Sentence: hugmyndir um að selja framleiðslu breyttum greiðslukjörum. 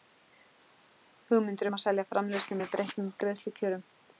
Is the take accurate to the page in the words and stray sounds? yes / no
no